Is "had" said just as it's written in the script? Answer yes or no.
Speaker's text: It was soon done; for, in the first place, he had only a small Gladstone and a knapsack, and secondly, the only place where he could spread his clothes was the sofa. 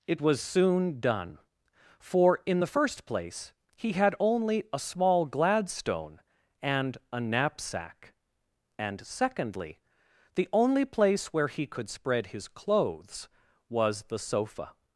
yes